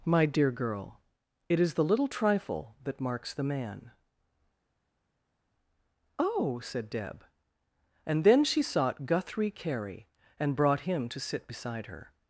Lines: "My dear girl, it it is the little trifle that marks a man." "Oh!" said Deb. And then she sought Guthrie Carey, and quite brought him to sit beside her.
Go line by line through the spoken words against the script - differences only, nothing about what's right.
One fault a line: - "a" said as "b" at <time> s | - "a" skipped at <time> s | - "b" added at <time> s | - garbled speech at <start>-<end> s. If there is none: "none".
- "it" skipped at 1.6 s
- "a" said as "the" at 3.3 s
- "quite" skipped at 10.6 s